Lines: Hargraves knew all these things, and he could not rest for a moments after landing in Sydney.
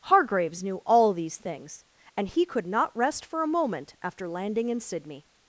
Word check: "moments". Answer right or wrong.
wrong